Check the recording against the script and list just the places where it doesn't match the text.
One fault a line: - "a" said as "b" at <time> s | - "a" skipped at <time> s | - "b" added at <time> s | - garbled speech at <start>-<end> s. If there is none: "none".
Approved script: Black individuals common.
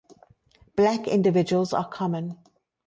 - "are" added at 1.7 s